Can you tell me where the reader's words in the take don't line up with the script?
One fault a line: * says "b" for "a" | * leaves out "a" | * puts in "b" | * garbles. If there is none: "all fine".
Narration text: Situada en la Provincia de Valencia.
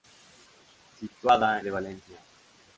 * leaves out "en la Provincia"